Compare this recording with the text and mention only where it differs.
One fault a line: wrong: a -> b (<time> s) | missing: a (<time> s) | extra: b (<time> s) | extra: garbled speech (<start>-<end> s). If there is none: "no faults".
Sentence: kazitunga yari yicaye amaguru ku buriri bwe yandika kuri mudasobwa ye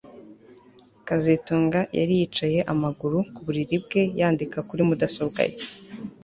no faults